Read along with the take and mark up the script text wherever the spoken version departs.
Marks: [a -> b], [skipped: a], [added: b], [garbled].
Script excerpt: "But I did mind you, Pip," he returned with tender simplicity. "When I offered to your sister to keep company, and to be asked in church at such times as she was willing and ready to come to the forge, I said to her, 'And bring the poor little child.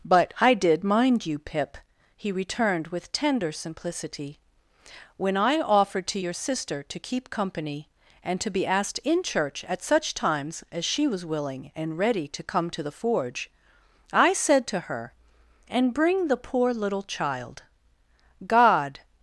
"But I did mind you, Pip," he returned with tender simplicity. "When I offered to your sister to keep company, and to be asked in church at such times as she was willing and ready to come to the forge, I said to her, 'And bring the poor little child. [added: God]